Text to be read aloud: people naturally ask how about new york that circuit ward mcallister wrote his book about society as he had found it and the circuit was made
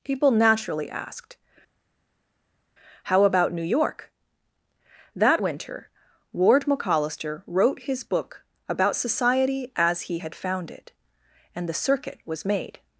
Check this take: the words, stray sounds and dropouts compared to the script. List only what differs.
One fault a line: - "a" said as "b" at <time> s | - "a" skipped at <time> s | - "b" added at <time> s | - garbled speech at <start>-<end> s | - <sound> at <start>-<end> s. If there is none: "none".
- "ask" said as "asked" at 0.9 s
- "circuit" said as "winter" at 5.4 s